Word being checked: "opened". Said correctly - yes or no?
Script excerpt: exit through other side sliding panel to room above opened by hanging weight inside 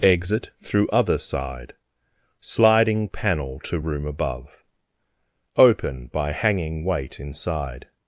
no